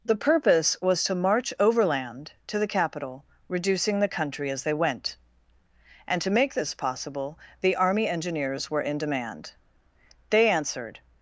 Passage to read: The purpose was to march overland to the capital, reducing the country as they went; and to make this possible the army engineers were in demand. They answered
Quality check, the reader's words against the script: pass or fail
pass